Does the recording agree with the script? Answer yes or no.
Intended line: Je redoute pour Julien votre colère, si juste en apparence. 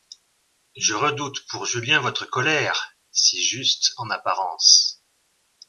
yes